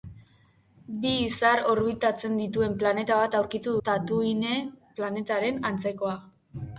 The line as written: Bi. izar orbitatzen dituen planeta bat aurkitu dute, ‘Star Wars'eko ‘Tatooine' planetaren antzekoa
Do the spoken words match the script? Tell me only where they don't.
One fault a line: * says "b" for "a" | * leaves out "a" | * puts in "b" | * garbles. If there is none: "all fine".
* leaves out "dute Star Wars'eko"